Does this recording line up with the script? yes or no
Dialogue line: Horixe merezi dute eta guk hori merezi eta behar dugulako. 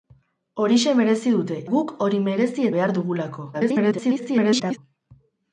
no